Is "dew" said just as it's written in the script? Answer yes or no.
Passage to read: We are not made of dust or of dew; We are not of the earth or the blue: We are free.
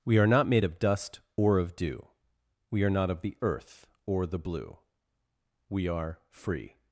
yes